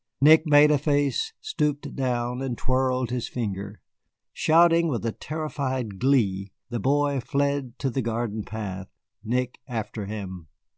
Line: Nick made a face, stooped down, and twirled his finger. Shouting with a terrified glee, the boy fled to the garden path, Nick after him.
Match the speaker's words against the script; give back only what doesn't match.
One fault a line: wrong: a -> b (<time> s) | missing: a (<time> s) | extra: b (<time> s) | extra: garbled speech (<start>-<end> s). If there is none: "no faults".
no faults